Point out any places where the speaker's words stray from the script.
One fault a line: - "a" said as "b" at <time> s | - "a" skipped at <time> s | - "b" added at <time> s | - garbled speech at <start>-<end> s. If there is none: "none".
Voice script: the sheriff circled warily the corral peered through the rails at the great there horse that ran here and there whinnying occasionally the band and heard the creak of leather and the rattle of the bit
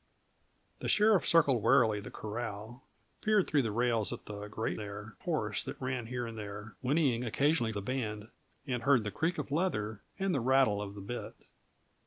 none